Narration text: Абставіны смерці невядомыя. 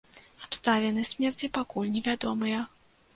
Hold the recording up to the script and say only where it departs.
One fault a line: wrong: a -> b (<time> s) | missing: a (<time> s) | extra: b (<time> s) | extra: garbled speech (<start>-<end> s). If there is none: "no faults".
extra: пакуль (1.6 s)